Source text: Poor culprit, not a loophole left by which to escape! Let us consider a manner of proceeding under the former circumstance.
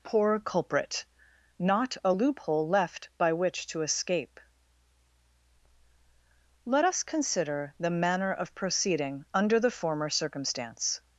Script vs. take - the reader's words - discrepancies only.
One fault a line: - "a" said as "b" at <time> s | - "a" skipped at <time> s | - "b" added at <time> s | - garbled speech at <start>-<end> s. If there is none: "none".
- "a" said as "the" at 7.8 s